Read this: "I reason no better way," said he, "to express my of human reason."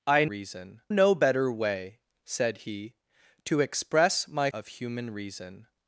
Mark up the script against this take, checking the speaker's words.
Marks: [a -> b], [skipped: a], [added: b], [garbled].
"I reason no better way," said he, "to express my of human reason."